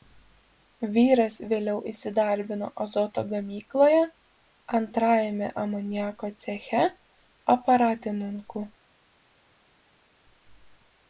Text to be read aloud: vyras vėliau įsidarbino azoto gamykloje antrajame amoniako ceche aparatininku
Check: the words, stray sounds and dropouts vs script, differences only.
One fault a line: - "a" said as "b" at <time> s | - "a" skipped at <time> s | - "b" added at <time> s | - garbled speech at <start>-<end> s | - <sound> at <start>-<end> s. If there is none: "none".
none